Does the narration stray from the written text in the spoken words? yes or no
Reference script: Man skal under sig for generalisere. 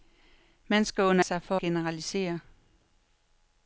no